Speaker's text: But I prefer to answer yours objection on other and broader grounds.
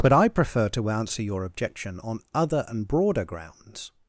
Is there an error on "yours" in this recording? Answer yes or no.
yes